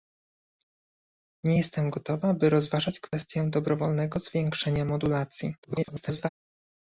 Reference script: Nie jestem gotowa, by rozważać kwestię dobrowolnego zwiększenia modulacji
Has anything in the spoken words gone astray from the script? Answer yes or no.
yes